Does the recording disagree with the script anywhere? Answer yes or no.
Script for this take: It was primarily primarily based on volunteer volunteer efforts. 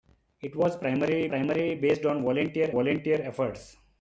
no